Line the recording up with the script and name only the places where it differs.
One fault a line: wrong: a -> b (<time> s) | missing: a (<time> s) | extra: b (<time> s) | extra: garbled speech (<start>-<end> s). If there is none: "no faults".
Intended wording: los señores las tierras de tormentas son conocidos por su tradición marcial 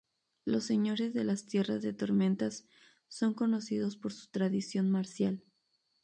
extra: de (1.1 s)